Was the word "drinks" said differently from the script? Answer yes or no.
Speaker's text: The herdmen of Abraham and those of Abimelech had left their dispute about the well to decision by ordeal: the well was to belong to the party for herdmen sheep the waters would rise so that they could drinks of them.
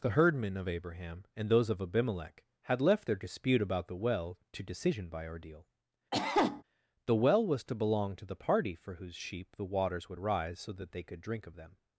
yes